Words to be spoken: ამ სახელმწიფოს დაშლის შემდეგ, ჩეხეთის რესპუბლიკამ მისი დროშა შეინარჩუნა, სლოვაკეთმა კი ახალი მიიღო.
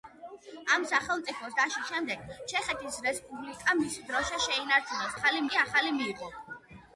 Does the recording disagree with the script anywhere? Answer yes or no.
yes